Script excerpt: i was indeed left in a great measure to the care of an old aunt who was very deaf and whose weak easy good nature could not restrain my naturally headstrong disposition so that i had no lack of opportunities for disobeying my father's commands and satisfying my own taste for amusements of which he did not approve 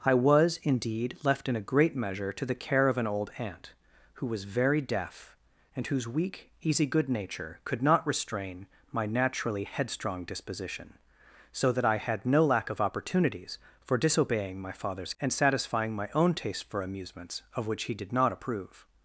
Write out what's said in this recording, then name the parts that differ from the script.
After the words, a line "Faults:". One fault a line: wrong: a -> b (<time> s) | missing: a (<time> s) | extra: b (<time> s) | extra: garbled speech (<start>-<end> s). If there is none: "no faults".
i was indeed left in a great measure to the care of an old aunt who was very deaf and whose weak easy good nature could not restrain my naturally headstrong disposition so that i had no lack of opportunities for disobeying my father's and satisfying my own taste for amusements of which he did not approve
Faults:
missing: commands (15.1 s)